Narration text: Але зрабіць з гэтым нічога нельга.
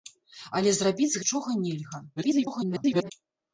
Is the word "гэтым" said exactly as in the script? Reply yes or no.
no